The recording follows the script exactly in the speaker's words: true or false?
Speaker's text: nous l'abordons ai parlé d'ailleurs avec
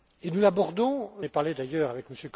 true